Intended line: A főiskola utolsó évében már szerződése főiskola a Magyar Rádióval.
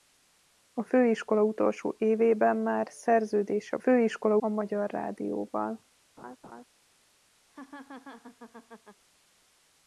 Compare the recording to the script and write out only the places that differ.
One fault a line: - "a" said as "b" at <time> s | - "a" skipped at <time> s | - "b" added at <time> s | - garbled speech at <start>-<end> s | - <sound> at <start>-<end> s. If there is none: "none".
- laugh at 6.2-6.6 s
- laugh at 7.5-9.0 s